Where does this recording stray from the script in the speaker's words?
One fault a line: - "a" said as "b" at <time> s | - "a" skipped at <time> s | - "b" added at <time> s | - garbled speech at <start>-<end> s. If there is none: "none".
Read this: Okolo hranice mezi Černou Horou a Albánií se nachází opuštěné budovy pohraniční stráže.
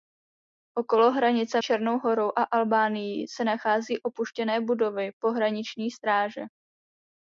- "mezi" skipped at 1.6 s